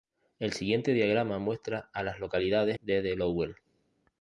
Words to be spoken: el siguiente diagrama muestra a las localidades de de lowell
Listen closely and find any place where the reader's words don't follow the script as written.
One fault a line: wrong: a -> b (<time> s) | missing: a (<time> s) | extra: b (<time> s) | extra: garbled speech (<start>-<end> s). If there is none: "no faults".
no faults